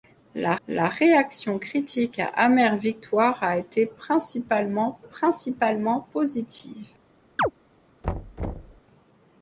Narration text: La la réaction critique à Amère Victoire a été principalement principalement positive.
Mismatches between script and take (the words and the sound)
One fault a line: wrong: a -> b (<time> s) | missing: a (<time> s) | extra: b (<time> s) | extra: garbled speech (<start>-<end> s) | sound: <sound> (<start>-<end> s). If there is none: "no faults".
sound: chirp (7.4-7.5 s)
sound: thud (8.0-8.8 s)